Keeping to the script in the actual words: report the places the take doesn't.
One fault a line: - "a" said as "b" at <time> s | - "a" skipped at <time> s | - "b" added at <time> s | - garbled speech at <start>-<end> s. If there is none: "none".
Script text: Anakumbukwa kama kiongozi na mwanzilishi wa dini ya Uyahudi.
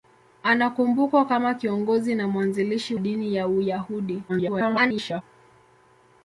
- "wa" skipped at 3.0 s
- garbled speech at 4.3-5.2 s